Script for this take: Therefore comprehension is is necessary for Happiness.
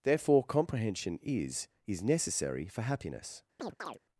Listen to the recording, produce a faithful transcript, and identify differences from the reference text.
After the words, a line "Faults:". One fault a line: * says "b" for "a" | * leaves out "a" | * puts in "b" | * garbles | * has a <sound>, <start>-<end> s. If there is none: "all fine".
Therefore comprehension is is necessary for Happiness.
Faults:
* has a chirp, 3.6-4.0 s